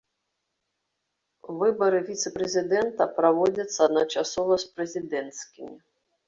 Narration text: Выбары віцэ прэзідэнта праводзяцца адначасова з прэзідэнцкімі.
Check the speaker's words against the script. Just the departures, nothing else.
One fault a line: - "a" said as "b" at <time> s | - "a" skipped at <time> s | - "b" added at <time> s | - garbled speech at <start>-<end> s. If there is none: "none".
none